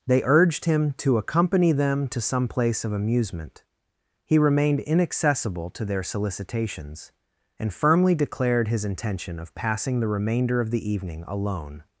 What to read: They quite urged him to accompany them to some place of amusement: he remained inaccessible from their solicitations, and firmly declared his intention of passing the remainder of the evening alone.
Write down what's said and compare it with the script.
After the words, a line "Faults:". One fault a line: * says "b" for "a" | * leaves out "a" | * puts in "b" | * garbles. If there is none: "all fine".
They urged him to accompany them to some place of amusement: he remained inaccessible to their solicitations, and firmly declared his intention of passing the remainder of the evening alone.
Faults:
* leaves out "quite"
* says "to" for "from"